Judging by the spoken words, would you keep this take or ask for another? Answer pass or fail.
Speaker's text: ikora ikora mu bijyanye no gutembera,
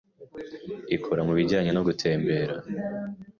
fail